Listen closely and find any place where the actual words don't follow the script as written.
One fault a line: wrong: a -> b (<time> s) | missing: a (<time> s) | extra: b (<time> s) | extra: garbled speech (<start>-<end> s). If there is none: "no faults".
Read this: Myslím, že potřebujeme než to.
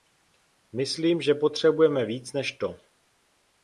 extra: víc (2.0 s)